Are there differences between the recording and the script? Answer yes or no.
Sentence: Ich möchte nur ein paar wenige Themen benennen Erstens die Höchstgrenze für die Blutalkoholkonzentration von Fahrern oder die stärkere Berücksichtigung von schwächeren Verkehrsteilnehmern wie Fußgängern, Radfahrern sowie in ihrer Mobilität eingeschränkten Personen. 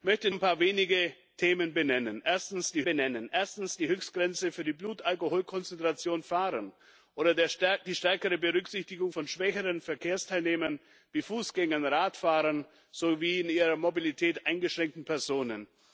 yes